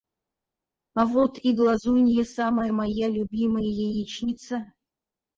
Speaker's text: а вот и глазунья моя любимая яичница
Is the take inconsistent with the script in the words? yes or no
yes